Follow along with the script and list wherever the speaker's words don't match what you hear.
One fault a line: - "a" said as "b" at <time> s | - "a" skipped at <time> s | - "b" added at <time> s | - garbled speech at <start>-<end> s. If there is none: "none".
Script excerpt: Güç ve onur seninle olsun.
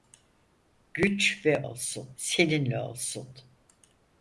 - "onur" said as "olsun" at 1.6 s